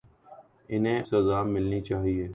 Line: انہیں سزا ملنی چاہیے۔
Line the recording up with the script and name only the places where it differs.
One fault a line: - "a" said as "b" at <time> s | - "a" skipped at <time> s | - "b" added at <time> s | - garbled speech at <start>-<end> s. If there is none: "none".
none